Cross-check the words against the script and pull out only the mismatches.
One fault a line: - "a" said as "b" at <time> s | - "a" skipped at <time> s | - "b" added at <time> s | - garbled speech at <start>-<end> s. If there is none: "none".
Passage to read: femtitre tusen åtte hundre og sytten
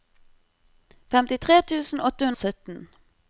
- "hundre" skipped at 2.3 s